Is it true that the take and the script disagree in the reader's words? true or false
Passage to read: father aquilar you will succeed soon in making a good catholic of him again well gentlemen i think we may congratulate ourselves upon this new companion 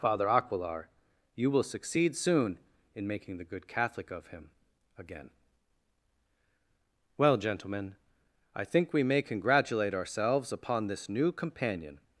true